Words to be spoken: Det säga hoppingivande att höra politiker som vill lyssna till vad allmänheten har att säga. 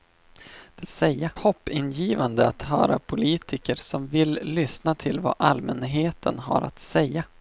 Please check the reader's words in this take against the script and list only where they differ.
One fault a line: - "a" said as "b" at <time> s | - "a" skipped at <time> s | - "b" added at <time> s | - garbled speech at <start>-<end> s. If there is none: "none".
none